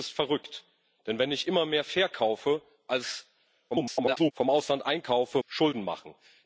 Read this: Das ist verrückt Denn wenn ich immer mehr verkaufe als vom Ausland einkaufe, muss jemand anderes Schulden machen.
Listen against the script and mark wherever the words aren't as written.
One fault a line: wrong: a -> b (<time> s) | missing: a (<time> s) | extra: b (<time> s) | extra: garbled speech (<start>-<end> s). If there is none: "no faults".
extra: garbled speech (3.7-4.3 s)
missing: muss jemand anderes (5.4 s)